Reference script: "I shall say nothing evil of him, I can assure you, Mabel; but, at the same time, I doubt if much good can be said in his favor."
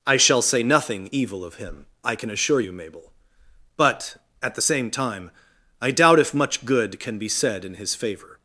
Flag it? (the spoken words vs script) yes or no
no